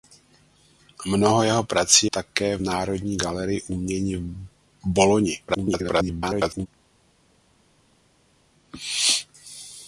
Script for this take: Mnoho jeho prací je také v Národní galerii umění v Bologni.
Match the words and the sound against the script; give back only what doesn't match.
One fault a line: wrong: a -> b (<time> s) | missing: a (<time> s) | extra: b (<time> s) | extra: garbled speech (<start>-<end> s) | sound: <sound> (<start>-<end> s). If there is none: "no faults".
missing: je (2.1 s)
extra: garbled speech (5.5-6.7 s)